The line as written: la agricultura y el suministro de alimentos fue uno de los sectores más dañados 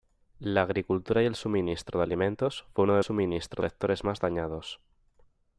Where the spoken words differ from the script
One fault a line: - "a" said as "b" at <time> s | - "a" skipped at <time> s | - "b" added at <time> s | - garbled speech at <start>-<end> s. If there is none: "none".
- "los" said as "suministro" at 3.0 s